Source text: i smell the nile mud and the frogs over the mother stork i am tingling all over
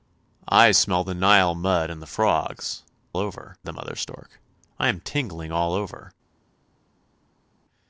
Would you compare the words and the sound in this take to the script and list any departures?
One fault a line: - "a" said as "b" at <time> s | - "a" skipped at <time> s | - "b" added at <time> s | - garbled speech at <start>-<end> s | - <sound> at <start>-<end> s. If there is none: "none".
none